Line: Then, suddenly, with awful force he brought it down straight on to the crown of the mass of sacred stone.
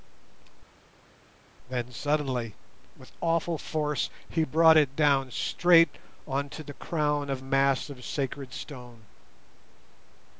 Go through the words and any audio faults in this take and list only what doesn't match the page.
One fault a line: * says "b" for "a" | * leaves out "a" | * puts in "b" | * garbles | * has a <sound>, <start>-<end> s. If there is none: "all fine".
* leaves out "the"